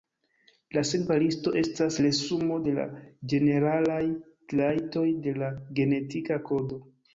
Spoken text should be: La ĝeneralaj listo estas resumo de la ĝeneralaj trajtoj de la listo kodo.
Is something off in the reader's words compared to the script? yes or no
yes